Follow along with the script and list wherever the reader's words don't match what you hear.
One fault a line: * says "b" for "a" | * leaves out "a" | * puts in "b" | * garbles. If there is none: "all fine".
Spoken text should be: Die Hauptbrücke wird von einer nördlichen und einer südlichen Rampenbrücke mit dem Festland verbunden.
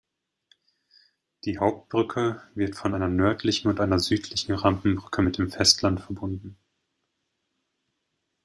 all fine